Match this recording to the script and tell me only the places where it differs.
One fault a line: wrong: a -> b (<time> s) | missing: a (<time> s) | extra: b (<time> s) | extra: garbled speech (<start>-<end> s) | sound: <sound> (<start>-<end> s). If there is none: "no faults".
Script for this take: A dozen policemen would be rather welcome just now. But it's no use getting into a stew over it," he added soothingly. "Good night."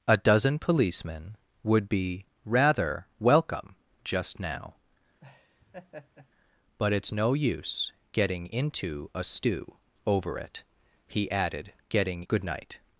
sound: laugh (5.2-6.3 s)
wrong: soothingly -> getting (11.9 s)